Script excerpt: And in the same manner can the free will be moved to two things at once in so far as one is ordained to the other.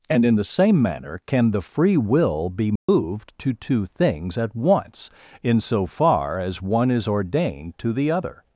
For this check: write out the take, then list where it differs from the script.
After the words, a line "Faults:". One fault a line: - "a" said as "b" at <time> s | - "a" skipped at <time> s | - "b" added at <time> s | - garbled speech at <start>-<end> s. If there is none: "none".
And in the same manner can the free will be moved to two things at once in so far as one is ordained to the other.
Faults:
none